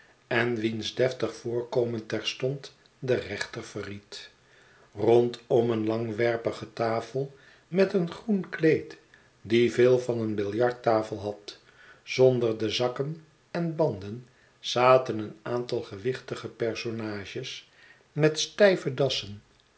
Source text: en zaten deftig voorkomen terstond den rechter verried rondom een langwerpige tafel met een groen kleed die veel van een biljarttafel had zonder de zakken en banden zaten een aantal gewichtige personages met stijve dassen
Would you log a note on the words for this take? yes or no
yes